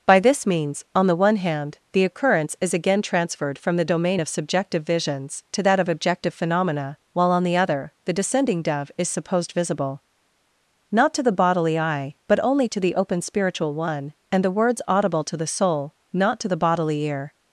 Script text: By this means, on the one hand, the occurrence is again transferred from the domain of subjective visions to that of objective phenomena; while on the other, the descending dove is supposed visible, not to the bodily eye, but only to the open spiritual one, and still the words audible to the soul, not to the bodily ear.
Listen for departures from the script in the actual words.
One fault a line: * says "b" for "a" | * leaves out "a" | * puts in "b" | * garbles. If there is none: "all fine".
* leaves out "still"